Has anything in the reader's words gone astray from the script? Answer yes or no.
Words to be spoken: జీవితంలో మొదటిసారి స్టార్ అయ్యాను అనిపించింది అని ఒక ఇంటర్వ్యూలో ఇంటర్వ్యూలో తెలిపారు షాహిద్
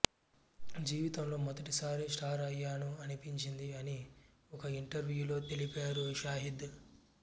yes